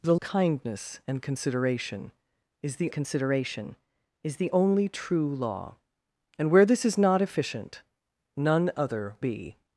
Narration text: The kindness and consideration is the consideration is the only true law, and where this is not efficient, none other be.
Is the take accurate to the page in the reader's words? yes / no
yes